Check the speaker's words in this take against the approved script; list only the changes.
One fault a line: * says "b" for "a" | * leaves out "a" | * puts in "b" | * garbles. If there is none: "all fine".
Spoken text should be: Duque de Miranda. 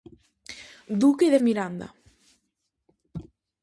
all fine